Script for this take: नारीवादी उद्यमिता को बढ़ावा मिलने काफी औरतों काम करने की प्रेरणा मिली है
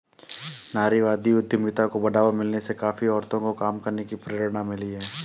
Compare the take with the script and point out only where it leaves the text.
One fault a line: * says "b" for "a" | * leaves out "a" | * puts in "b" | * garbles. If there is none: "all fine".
* puts in "से"
* puts in "को"